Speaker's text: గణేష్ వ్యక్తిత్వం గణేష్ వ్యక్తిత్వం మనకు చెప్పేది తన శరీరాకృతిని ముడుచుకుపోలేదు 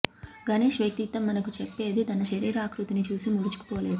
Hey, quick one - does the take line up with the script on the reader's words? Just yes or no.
no